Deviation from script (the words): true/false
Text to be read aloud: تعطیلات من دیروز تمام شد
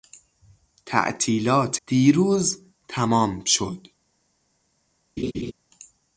true